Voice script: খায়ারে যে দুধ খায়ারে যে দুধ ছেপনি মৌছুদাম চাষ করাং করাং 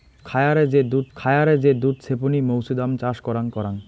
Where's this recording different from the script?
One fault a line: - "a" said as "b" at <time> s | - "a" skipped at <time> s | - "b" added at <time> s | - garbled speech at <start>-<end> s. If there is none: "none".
none